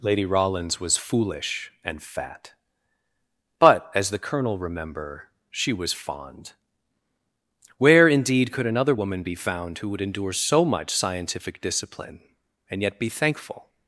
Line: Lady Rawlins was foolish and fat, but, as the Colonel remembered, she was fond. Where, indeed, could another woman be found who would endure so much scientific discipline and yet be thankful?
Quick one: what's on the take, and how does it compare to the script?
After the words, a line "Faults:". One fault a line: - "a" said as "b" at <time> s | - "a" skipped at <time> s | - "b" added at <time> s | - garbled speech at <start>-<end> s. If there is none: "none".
Lady Rawlins was foolish and fat, but, as the Colonel remember, she was fond. Where, indeed, could another woman be found who would endure so much scientific discipline and yet be thankful?
Faults:
- "remembered" said as "remember" at 4.6 s